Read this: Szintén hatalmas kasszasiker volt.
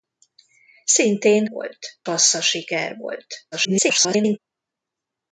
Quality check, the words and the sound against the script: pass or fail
fail